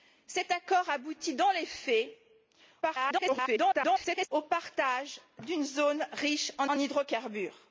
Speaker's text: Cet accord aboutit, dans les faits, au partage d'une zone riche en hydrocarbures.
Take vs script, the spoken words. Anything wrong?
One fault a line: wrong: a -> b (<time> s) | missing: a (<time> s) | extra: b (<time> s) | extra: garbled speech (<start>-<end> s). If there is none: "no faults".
extra: garbled speech (2.8-4.3 s)
extra: en (6.7 s)